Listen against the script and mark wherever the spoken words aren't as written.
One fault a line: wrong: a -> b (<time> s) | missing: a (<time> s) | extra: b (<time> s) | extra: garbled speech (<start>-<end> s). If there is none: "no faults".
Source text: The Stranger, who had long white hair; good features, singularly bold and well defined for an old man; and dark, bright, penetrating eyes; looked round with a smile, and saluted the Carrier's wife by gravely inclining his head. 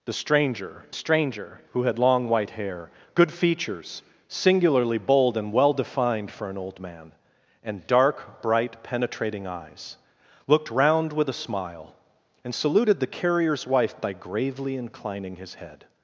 extra: Stranger (0.9 s)